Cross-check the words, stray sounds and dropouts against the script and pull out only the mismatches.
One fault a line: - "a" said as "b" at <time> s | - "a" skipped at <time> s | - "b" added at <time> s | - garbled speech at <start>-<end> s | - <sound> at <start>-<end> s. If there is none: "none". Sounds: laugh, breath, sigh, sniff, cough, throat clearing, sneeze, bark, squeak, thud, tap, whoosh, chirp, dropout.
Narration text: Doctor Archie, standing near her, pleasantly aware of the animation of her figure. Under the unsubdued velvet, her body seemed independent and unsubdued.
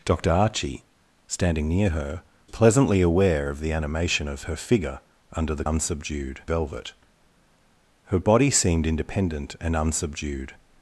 none